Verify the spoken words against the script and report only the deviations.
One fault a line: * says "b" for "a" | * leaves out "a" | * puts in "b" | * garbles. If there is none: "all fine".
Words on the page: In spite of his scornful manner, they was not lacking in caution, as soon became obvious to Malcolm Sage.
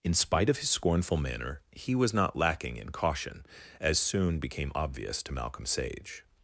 * says "he" for "they"